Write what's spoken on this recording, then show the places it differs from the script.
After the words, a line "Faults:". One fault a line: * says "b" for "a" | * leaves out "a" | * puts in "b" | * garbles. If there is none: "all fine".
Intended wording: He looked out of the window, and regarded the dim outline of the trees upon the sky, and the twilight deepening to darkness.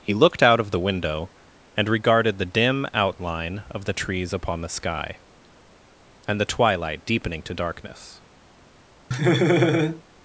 He looked out of the window, and regarded the dim outline of the trees upon the sky, and the twilight deepening to darkness.
Faults:
all fine